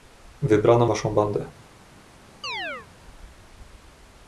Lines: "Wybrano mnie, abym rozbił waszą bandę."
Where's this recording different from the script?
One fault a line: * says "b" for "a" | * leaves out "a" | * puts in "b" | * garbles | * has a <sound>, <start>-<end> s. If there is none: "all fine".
* leaves out "mnie abym rozbił"
* has a chirp, 2.4-2.9 s